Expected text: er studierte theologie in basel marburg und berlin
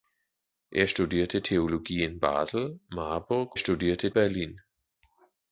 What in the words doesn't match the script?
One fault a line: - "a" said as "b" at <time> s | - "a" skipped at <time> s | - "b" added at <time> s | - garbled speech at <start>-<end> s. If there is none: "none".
- "und" said as "studierte" at 3.6 s